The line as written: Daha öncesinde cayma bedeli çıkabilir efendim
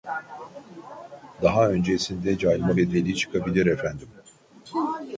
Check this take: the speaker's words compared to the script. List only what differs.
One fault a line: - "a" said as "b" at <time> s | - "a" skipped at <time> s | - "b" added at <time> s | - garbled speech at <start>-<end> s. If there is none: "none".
none